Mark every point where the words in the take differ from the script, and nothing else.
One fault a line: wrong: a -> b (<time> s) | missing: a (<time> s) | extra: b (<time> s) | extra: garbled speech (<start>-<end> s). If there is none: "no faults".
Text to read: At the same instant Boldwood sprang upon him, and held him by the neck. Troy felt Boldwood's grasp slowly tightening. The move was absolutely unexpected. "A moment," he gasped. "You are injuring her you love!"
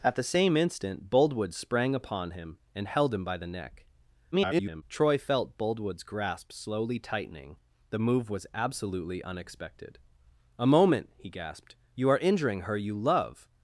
extra: garbled speech (4.3-4.8 s)